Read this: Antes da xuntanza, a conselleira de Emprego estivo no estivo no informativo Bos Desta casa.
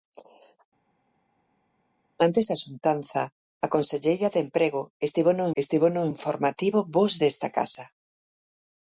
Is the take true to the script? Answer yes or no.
yes